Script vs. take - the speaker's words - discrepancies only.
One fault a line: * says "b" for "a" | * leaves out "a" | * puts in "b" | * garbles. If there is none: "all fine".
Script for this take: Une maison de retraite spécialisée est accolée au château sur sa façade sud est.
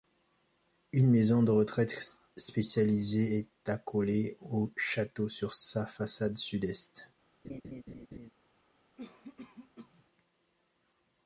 all fine